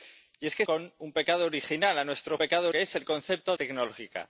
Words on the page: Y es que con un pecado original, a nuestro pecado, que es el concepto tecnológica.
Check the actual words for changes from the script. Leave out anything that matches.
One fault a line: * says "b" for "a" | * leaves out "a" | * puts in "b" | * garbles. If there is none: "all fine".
all fine